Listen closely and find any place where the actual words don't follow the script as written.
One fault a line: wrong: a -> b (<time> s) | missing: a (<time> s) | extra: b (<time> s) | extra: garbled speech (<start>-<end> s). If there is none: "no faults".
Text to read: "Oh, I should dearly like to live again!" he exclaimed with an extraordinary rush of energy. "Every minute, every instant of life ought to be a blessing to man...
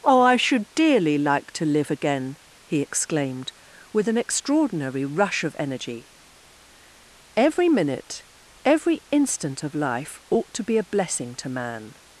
no faults